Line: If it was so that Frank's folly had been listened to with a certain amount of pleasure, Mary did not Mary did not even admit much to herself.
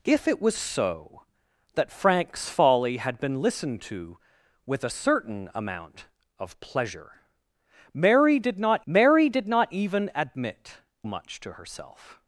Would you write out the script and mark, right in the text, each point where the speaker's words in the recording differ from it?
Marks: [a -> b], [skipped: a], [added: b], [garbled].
If it was so that Frank's folly had been listened to with a certain amount of pleasure, Mary did not Mary did not even admit much to herself.